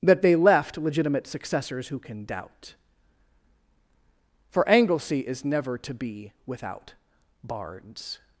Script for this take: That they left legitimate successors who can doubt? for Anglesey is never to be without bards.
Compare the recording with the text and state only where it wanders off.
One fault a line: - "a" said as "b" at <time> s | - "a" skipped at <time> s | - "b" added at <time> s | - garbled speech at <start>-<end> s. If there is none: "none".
none